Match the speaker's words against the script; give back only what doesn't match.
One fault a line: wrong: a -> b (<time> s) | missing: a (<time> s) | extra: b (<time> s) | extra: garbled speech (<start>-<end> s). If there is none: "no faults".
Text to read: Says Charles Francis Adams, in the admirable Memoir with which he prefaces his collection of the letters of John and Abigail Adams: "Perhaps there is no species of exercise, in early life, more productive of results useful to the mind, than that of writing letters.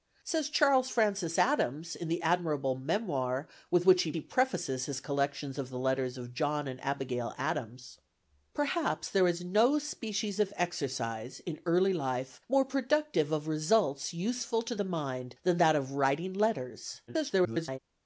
extra: he (4.1 s)
extra: garbled speech (17.1-17.8 s)